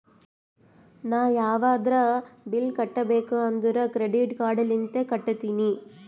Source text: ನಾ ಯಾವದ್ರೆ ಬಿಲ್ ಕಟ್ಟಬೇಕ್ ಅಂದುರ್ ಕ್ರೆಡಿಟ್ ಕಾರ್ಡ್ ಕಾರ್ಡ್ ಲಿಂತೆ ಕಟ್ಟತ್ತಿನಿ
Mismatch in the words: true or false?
true